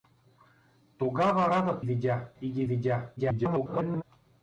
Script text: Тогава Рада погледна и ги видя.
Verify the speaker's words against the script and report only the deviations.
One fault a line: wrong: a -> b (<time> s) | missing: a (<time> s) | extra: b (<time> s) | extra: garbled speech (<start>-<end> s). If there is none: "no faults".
wrong: погледна -> видя (1.8 s)
extra: garbled speech (3.2-4.0 s)